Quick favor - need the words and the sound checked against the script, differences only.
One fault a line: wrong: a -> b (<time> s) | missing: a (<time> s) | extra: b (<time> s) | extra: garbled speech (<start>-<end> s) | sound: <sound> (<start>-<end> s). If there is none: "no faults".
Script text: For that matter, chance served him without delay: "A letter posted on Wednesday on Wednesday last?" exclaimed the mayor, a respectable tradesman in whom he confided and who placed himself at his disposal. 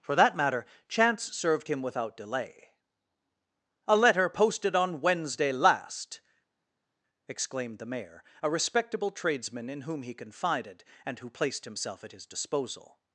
missing: on Wednesday (5.5 s)